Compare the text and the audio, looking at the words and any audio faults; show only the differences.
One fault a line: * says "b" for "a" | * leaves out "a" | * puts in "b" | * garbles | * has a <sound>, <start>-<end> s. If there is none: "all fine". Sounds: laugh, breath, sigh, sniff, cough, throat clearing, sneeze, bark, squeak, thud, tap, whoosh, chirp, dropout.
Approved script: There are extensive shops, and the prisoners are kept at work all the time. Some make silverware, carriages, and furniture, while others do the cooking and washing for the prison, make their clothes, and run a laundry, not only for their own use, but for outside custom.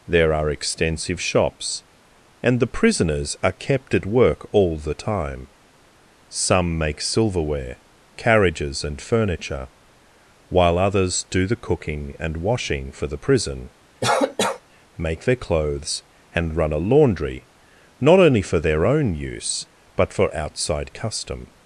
* has a cough, 14.0-14.6 s